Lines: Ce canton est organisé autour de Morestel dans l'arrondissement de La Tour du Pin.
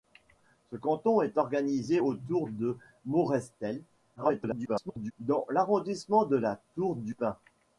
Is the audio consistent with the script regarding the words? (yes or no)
no